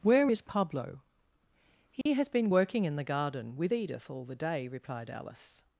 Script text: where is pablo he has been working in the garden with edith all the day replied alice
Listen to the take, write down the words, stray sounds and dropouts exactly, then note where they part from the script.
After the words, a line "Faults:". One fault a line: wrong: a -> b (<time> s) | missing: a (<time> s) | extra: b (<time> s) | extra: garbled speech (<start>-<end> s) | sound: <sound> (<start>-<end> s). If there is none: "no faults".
where is pablo he has been working in the garden with edith all the day replied alice
Faults:
sound: dropout (2.0-2.1 s)